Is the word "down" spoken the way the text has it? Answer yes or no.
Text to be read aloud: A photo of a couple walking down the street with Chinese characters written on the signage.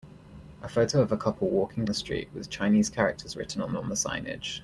no